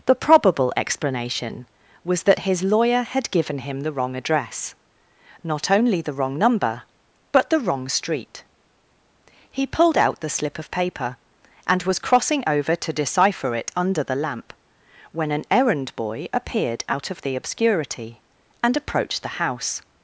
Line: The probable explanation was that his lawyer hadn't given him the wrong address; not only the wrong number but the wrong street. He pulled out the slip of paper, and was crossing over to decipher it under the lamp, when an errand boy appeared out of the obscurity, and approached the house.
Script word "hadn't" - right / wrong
wrong